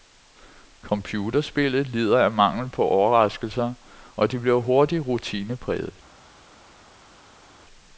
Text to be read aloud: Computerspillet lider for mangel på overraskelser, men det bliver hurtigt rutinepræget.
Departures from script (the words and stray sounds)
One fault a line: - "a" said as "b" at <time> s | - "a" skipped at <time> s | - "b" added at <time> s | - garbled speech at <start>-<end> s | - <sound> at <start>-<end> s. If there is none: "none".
- "for" said as "af" at 2.2 s
- "men" said as "og" at 4.2 s